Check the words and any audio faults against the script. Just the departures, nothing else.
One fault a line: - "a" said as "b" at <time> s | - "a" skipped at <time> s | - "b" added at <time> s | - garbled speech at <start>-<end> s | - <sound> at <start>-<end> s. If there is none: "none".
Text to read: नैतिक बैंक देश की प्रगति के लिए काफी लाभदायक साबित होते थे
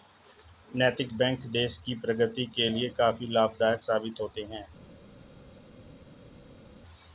- "थे" said as "हैं" at 4.4 s